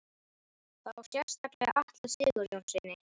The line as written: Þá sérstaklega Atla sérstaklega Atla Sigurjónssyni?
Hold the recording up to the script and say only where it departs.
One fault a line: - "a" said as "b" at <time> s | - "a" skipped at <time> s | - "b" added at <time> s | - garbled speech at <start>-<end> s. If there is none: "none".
- "sérstaklega Atla" skipped at 2.1 s